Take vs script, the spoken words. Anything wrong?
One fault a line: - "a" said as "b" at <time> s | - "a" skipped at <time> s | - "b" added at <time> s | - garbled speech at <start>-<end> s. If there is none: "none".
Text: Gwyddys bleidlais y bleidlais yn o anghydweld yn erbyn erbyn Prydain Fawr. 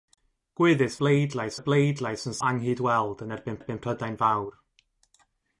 none